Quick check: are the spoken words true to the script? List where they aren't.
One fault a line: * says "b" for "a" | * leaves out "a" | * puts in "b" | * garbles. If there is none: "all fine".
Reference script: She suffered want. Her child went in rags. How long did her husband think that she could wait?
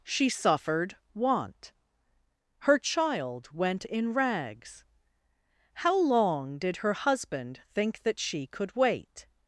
all fine